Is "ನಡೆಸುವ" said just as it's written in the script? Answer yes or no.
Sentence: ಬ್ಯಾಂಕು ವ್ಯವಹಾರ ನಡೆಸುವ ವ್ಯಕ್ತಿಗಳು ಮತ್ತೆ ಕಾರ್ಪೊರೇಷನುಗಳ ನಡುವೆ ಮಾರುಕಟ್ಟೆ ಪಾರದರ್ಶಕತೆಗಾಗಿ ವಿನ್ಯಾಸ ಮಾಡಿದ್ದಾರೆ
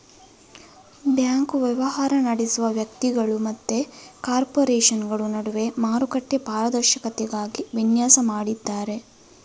yes